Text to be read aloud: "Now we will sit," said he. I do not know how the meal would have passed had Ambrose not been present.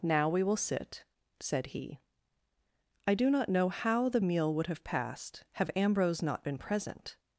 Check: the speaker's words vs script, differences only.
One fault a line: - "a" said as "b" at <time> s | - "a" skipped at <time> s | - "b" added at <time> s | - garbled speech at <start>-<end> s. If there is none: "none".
- "had" said as "have" at 5.5 s